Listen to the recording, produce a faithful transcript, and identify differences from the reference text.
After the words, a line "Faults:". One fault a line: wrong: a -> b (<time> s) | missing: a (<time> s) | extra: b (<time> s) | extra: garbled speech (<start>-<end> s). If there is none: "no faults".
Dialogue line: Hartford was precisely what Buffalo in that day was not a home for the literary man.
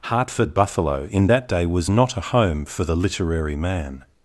Hartford Buffalo in that day was not a home for the literary man.
Faults:
missing: was precisely what (0.6 s)